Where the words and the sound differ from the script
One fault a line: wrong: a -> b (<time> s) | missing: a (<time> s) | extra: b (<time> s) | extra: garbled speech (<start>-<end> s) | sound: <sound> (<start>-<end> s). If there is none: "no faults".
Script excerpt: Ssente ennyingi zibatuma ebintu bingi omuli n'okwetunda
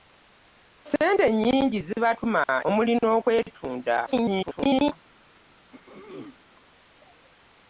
missing: ebintu bingi (2.4 s)
extra: garbled speech (4.1-4.9 s)
sound: throat clearing (5.7-6.4 s)